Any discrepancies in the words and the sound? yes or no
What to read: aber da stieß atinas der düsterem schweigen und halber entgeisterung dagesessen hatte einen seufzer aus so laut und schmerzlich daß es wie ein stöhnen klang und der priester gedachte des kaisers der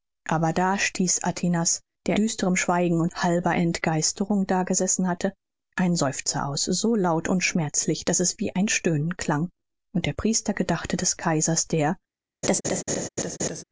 yes